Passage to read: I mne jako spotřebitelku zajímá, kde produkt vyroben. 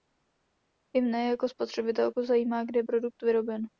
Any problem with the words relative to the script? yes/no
no